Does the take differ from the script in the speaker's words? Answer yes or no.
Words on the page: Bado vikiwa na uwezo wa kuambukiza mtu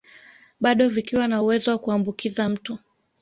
no